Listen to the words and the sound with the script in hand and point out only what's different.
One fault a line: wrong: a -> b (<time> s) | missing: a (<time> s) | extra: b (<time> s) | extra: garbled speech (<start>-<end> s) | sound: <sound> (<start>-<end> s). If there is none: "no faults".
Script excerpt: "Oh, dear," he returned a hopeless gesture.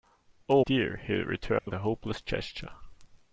sound: dropout (1.6-1.7 s)